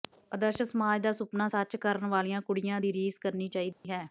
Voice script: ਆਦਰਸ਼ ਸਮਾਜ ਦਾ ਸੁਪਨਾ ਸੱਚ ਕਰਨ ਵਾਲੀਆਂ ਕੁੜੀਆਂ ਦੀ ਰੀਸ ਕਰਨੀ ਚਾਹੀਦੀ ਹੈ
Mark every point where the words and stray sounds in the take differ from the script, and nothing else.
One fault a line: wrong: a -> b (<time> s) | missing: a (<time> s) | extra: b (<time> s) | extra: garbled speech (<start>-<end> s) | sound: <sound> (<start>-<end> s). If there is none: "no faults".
sound: dropout (3.7-3.8 s)